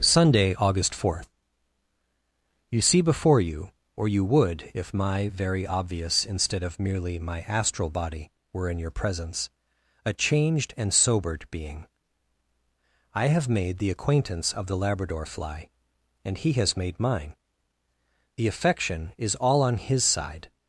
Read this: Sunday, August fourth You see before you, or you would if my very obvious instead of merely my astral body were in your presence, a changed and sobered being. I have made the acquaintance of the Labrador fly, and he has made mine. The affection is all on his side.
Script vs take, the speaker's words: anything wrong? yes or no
no